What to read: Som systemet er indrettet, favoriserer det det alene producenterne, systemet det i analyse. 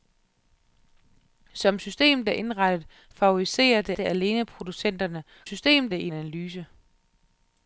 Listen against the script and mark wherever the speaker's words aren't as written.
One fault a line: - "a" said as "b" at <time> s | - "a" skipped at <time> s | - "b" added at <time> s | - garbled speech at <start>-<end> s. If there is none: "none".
none